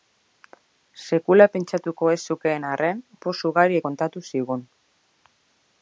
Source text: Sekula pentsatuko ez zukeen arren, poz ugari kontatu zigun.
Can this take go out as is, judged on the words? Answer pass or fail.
pass